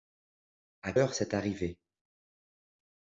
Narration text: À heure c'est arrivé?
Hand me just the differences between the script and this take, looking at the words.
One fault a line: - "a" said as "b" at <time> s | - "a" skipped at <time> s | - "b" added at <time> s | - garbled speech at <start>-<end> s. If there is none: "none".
none